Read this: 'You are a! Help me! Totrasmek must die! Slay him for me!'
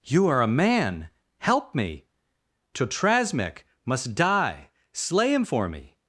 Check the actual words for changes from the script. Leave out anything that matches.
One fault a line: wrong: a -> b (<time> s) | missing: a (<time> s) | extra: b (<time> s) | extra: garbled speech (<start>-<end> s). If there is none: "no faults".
extra: man (0.5 s)